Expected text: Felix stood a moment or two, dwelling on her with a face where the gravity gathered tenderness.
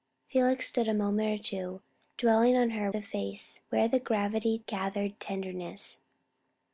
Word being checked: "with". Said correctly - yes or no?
no